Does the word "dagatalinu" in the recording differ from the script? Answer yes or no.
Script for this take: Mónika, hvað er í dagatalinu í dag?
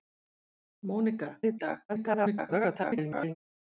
yes